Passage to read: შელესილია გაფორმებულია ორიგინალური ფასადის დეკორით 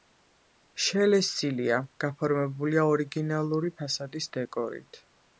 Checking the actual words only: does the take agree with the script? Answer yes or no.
yes